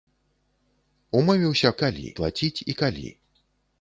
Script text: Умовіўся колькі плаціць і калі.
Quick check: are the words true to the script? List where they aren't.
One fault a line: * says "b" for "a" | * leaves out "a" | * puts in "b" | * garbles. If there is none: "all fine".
* says "калі" for "колькі"